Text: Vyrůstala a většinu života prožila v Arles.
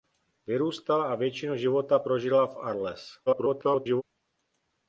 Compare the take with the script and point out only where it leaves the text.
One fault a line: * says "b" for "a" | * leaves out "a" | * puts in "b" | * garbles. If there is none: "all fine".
* garbles